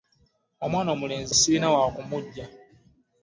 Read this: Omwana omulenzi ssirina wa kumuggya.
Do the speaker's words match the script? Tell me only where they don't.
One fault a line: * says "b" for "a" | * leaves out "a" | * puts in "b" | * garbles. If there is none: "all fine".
all fine